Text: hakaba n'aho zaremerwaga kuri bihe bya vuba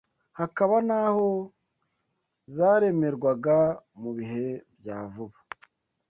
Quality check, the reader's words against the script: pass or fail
fail